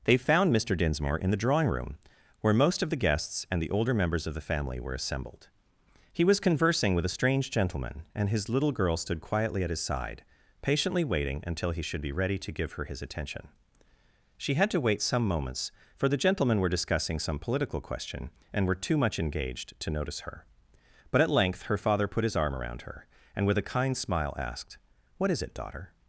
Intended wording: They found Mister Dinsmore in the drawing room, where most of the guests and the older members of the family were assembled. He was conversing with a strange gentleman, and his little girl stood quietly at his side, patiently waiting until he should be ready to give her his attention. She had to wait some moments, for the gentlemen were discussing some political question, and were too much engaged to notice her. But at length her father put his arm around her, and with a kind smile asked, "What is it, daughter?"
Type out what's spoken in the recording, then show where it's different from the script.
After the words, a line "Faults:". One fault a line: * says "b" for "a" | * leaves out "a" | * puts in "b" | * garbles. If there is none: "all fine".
They found Mister Dinsmore in the drawing room, where most of the guests and the older members of the family were assembled. He was conversing with a strange gentleman, and his little girl stood quietly at his side, patiently waiting until he should be ready to give her his attention. She had to wait some moments, for the gentlemen were discussing some political question, and were too much engaged to notice her. But at length her father put his arm around her, and with a kind smile asked, "What is it, daughter?"
Faults:
all fine